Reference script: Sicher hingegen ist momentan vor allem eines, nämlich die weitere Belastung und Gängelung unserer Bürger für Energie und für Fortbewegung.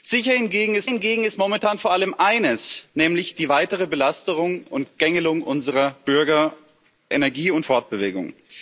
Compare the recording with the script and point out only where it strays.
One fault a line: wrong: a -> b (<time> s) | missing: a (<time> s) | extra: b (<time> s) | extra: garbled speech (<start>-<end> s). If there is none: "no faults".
extra: hingegen ist (0.8 s)
missing: für (6.5 s)
missing: für (7.7 s)